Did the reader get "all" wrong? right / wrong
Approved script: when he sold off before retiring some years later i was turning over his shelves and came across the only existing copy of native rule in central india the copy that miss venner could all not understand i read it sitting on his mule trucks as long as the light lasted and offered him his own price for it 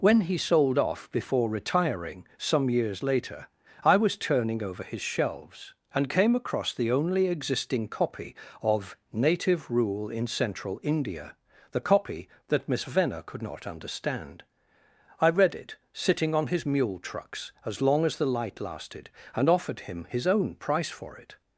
wrong